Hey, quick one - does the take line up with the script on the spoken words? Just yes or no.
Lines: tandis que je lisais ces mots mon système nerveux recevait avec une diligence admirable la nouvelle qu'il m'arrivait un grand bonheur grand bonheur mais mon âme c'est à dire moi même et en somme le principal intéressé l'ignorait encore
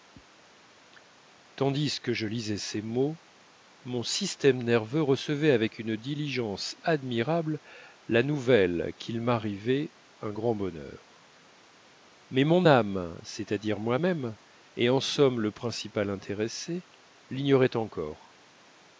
no